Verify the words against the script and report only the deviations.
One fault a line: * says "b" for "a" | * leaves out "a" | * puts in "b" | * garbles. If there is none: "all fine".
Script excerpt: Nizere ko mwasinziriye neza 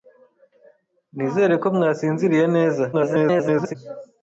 * garbles